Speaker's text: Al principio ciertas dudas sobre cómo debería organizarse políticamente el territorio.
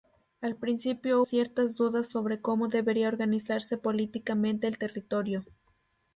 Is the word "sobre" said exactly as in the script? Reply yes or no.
yes